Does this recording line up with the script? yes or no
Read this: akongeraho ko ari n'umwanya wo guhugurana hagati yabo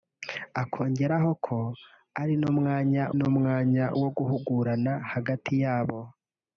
no